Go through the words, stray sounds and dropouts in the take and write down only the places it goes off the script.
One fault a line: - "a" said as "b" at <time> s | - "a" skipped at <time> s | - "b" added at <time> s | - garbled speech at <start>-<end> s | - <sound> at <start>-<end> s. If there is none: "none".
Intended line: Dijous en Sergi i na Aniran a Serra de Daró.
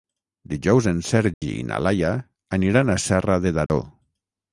- dropout at 1.3-1.4 s
- "Laia" added at 1.9 s
- dropout at 3.7-3.7 s